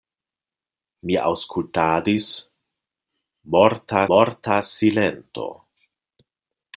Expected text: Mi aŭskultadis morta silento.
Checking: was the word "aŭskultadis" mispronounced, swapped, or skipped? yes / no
no